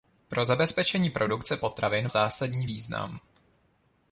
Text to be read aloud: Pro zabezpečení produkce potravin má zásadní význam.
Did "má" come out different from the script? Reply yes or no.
yes